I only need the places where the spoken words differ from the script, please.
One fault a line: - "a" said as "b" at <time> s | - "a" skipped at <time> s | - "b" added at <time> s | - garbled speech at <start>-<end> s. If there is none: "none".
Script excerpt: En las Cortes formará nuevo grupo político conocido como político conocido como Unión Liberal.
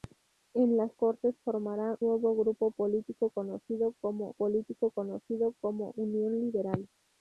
none